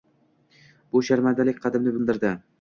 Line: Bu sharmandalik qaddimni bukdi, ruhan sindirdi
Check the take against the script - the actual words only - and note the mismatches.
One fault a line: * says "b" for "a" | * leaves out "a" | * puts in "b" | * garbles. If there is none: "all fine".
* leaves out "bukdi ruhan"